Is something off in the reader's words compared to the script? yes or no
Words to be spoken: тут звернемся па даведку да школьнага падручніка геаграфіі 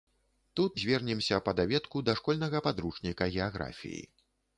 no